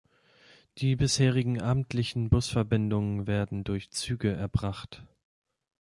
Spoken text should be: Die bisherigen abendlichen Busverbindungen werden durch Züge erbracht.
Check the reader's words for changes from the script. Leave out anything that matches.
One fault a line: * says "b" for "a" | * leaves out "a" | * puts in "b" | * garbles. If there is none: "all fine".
all fine